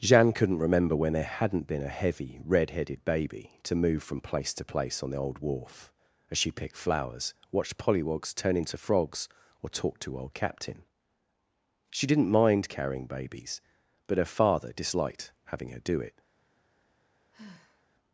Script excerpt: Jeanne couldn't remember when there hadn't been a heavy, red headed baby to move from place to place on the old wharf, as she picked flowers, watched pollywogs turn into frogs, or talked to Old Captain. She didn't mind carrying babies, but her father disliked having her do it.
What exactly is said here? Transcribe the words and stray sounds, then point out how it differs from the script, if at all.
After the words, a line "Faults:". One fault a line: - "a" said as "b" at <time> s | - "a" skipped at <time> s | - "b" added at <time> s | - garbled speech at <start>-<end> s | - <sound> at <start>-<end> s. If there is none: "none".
Jeanne couldn't remember when there hadn't been a heavy, red headed baby to move from place to place on the old wharf, as she picked flowers, watched pollywogs turn into frogs, or talked to Old Captain. She didn't mind carrying babies, but her father disliked having her do it.
Faults:
- sigh at 17.3-17.9 s